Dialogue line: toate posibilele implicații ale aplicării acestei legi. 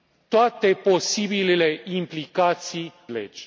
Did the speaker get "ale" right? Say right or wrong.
wrong